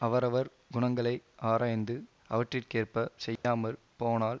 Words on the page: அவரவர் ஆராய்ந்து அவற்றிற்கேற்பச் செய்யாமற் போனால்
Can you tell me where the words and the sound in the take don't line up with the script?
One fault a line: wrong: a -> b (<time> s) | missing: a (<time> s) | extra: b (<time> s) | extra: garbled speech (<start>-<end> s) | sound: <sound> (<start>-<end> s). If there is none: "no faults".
extra: குணங்களை (0.7 s)
sound: dropout (3.4-3.4 s)